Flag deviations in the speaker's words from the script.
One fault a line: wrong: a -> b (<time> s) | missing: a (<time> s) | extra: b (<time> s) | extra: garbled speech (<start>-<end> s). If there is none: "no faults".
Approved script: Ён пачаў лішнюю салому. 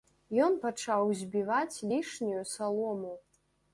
extra: збіваць (1.2 s)